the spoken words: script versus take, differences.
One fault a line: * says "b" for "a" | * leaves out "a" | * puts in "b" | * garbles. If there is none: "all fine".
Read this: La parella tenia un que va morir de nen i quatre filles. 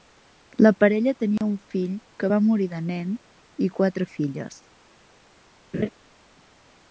* puts in "fill"